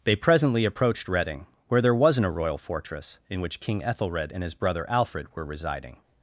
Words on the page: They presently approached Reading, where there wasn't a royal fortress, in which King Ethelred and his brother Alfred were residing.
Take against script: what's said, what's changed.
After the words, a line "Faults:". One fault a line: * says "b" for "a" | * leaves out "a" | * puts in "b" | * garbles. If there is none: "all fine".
They presently approached Reading, where there wasn't a royal fortress, in which King Ethelred and his brother Alfred were residing.
Faults:
all fine